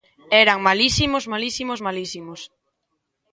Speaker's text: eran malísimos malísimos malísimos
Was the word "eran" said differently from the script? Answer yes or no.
no